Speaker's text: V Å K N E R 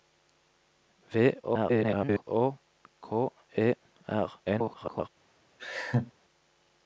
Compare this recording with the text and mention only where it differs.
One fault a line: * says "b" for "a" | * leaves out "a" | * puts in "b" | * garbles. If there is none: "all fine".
* garbles
* leaves out "N"
* garbles